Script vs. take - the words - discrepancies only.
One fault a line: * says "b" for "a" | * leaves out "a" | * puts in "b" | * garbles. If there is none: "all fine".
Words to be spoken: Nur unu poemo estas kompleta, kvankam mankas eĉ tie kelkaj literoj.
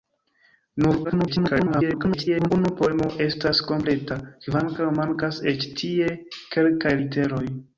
* garbles